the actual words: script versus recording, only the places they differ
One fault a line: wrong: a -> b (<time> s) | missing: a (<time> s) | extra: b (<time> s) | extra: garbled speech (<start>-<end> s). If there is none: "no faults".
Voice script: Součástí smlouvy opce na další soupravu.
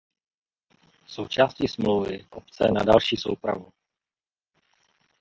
no faults